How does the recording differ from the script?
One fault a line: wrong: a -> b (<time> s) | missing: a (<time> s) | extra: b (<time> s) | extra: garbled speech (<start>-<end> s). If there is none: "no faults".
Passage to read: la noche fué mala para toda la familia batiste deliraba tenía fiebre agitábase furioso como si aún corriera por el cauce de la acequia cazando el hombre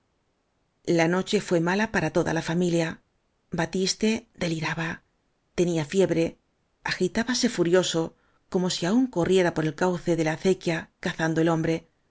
no faults